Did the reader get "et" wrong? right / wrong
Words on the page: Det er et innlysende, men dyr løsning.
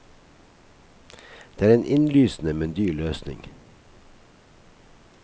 wrong